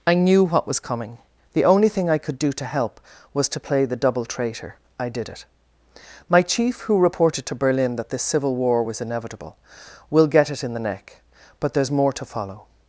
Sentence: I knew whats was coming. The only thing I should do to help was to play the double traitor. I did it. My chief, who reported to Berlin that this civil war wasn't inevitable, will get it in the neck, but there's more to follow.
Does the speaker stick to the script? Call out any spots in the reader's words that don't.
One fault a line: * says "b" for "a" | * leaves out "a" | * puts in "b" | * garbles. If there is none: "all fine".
* says "what" for "whats"
* says "could" for "should"
* says "was" for "wasn't"